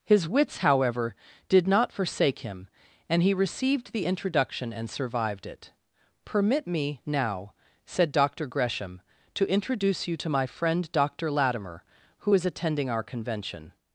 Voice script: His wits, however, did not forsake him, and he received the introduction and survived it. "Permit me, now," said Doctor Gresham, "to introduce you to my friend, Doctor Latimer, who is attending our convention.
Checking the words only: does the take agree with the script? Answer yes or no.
yes